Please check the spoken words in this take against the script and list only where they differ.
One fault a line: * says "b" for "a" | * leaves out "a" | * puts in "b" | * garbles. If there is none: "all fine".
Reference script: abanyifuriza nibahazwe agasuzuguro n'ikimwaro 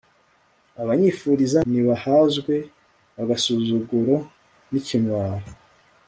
all fine